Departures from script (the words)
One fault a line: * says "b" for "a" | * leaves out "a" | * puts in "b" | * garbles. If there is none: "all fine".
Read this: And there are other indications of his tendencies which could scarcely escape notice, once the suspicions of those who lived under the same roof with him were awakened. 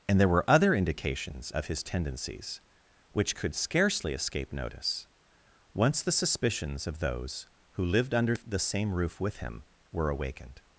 * says "were" for "are"